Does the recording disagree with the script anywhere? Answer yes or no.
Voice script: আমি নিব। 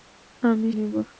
no